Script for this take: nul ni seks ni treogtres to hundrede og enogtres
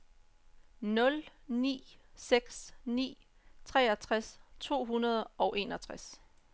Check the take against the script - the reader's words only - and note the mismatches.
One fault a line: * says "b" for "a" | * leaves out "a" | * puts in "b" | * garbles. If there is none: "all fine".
all fine